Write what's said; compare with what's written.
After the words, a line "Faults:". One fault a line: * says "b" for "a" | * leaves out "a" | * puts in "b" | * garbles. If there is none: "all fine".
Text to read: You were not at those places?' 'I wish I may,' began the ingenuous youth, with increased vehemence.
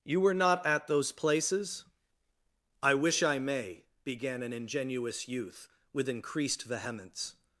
You were not at those places?' 'I wish I may,' began an ingenuous youth, with increased vehemence.
Faults:
* says "an" for "the"